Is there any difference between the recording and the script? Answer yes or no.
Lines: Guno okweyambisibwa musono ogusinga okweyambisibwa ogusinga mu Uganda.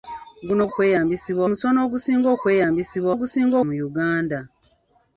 no